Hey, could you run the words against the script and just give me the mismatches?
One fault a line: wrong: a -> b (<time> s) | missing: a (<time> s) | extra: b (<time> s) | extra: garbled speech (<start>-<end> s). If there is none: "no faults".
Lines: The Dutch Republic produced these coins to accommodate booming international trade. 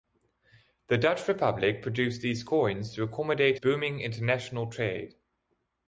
no faults